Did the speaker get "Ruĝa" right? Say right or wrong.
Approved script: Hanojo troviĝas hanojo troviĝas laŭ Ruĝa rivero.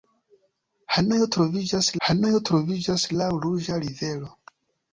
right